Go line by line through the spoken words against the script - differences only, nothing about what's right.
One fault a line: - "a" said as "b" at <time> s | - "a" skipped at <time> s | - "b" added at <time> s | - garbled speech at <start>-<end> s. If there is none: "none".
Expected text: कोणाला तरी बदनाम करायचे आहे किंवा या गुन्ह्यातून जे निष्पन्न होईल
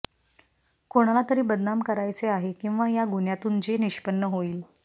none